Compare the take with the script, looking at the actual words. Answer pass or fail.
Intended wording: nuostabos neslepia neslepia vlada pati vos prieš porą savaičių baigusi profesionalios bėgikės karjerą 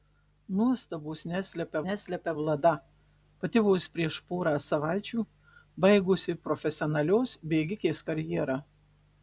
pass